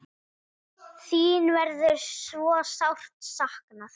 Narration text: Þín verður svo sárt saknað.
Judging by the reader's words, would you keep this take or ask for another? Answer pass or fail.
pass